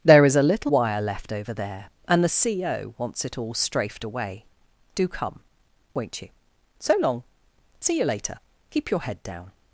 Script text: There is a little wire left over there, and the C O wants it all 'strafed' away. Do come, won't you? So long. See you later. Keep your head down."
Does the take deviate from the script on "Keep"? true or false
false